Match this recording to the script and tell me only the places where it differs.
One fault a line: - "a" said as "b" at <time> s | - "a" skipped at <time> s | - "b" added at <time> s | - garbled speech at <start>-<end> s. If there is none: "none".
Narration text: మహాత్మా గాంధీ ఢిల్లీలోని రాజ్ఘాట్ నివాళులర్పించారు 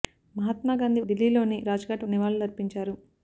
none